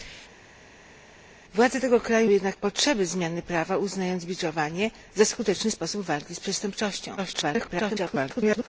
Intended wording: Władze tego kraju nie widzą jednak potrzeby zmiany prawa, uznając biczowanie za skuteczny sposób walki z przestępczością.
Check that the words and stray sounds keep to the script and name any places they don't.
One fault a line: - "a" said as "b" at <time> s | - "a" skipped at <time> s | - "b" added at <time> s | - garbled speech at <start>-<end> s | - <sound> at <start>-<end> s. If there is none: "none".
- "nie widzą" skipped at 2.3 s
- garbled speech at 7.2-8.7 s